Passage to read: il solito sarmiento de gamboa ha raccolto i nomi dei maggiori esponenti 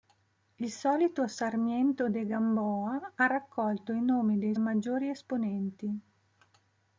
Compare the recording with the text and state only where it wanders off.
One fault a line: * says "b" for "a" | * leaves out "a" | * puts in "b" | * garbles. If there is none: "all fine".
all fine